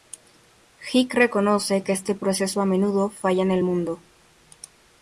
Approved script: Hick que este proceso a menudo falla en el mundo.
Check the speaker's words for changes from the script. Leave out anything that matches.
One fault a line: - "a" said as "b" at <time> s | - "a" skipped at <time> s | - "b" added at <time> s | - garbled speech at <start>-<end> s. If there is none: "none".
- "reconoce" added at 1.1 s